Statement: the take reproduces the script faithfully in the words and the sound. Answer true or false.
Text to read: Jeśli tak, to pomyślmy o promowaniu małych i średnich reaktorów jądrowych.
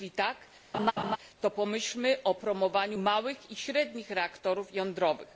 false